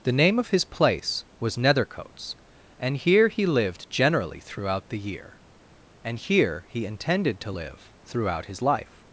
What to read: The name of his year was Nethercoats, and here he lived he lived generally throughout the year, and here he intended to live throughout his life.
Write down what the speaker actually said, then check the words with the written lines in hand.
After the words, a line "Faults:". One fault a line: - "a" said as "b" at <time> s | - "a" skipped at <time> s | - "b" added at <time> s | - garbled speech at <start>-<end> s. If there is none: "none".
The name of his place was Nethercoats, and here he lived generally throughout the year, and here he intended to live throughout his life.
Faults:
- "year" said as "place" at 0.7 s
- "he lived" skipped at 3.9 s